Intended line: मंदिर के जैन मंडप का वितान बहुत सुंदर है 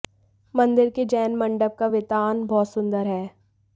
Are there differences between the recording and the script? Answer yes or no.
no